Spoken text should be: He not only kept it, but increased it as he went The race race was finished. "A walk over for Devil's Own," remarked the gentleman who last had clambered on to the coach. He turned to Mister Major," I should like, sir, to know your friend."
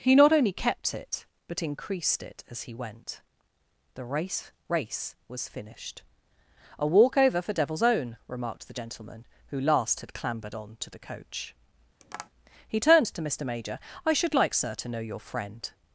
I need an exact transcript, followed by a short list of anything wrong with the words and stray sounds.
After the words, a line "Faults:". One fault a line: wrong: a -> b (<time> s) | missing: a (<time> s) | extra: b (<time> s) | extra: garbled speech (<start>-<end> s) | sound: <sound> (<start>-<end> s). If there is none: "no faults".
He not only kept it, but increased it as he went The race race was finished. "A walk over for Devil's Own," remarked the gentleman who last had clambered on to the coach. He turned to Mister Major," I should like, sir, to know your friend."
Faults:
sound: tap (12.0-12.3 s)